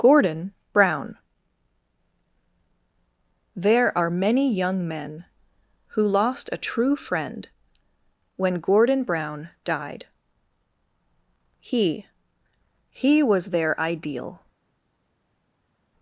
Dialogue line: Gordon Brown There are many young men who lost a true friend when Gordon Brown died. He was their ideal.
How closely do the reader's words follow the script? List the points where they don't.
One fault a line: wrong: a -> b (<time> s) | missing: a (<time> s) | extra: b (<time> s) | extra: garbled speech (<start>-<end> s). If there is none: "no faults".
extra: He (12.9 s)